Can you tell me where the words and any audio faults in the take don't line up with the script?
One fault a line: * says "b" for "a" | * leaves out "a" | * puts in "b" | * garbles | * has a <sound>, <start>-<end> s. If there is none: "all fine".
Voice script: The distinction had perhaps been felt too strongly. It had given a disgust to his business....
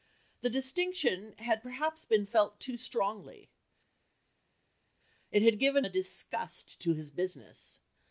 all fine